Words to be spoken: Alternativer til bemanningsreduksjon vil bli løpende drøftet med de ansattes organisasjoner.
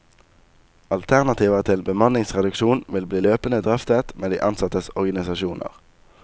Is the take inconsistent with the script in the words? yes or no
no